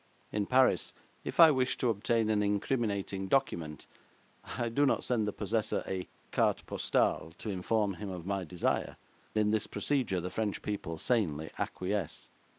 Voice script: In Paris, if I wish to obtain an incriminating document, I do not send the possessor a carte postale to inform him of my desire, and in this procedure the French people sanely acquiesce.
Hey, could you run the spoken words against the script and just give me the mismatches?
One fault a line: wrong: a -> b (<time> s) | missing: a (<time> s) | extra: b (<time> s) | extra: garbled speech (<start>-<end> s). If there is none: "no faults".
missing: and (9.0 s)